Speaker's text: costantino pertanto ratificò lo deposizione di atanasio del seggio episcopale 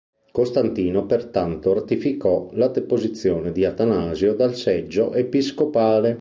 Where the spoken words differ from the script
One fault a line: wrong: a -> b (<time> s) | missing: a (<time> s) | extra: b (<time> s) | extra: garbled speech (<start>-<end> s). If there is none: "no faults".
wrong: lo -> la (2.5 s)
wrong: del -> dal (4.3 s)